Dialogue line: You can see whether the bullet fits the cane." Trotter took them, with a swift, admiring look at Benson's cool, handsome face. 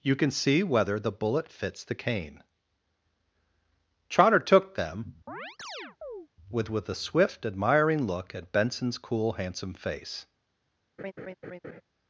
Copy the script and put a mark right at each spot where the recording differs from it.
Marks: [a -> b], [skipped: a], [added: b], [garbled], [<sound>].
You can see whether the bullet fits the cane." Trotter took them, [chirp] with [added: with] a swift, admiring look at Benson's cool, handsome face. [laugh]